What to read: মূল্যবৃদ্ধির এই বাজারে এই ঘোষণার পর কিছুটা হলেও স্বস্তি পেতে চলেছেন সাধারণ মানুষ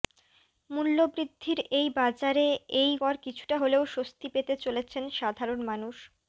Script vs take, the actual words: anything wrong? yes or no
yes